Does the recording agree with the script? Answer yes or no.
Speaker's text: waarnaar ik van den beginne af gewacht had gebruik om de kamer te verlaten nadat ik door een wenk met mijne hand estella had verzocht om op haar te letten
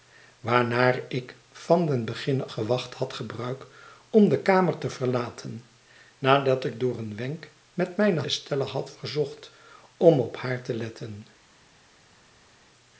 no